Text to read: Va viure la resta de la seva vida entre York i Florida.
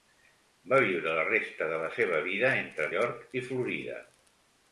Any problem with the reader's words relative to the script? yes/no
no